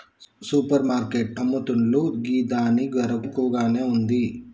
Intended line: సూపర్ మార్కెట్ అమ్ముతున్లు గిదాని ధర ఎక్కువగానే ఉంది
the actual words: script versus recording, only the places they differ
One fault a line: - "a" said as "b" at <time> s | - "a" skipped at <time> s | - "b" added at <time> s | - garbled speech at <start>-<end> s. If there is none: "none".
none